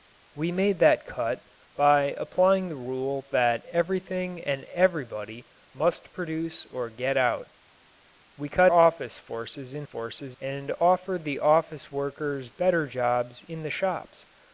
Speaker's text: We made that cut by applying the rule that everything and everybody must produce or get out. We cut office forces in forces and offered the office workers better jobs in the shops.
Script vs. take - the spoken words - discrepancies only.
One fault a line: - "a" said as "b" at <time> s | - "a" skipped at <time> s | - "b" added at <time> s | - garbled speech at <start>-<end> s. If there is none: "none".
none